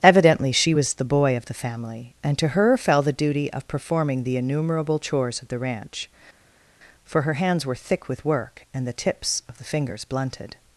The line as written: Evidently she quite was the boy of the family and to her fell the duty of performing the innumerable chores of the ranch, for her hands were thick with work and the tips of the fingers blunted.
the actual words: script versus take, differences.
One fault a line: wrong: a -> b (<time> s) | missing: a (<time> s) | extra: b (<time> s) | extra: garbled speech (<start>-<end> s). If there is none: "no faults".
missing: quite (0.7 s)